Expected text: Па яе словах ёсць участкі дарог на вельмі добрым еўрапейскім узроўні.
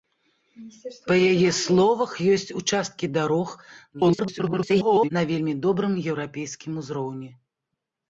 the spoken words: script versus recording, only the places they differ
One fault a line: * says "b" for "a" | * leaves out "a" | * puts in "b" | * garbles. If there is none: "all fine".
* garbles